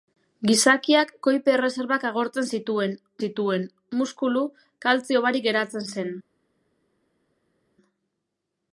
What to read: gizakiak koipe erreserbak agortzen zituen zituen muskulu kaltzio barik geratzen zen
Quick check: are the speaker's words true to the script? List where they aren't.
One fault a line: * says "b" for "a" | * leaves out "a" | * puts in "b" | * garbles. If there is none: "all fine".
all fine